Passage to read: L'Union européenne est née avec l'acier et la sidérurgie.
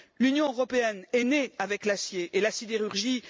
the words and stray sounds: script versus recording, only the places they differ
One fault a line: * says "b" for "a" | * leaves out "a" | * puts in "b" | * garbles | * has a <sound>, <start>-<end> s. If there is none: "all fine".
all fine